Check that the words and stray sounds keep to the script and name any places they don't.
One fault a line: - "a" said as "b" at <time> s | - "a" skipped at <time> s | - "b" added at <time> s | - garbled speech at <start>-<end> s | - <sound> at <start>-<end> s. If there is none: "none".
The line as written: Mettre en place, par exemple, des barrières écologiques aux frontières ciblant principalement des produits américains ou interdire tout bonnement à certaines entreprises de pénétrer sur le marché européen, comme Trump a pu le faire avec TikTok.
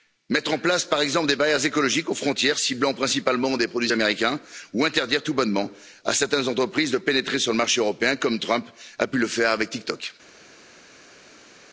none